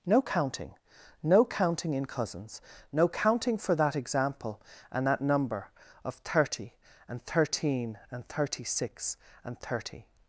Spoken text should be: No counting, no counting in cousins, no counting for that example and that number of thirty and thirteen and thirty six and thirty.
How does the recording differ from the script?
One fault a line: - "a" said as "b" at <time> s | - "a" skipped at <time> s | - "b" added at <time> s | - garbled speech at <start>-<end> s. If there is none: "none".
none